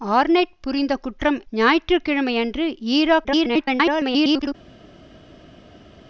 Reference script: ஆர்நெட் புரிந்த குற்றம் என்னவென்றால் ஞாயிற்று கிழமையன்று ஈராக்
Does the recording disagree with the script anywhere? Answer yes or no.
yes